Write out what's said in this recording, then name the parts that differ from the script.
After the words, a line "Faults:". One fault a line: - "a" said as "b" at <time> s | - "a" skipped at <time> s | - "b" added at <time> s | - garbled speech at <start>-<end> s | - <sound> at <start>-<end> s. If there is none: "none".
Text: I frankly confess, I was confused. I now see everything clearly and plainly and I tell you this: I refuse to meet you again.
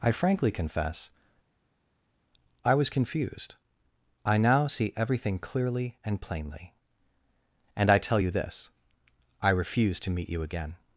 I frankly confess, I was confused. I now see everything clearly and plainly and I tell you this: I refuse to meet you again.
Faults:
none